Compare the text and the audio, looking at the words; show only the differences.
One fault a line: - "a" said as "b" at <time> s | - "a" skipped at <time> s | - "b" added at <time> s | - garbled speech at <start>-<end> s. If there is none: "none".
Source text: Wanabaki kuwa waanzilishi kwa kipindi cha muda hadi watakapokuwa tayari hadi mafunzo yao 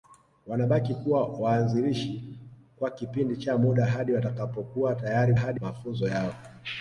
none